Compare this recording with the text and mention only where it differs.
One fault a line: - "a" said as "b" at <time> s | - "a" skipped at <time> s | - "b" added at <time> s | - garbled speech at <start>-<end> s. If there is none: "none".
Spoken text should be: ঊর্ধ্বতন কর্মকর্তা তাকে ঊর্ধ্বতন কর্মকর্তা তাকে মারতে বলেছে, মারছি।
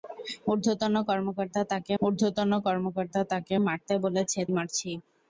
none